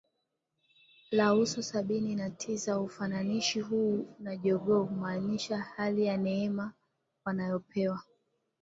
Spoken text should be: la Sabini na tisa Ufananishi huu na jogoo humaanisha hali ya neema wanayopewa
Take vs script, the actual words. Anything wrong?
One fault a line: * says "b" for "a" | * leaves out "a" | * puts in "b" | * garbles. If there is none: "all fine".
* puts in "uso"